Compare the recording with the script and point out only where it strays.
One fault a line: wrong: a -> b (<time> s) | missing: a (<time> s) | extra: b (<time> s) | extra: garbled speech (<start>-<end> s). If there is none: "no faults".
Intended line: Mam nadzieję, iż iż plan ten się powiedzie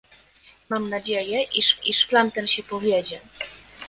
no faults